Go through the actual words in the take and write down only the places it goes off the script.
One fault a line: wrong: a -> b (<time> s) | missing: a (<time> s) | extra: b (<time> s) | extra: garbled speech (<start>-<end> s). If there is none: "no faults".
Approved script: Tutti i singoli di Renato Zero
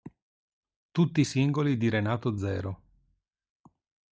no faults